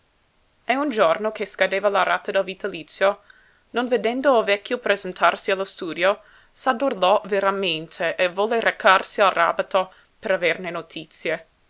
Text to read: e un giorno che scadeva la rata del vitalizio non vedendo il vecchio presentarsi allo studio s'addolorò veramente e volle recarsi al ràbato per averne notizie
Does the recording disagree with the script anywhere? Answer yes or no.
no